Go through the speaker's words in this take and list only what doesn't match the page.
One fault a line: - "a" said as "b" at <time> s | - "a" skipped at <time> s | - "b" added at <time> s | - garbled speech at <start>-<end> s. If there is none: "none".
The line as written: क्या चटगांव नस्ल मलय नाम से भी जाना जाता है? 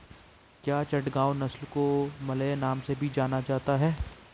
- "को" added at 1.7 s